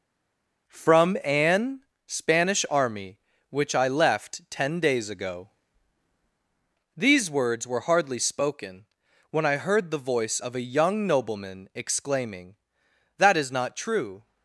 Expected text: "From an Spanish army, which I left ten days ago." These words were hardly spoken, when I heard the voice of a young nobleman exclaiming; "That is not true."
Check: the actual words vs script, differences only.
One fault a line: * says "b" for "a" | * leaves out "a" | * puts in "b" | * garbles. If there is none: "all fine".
all fine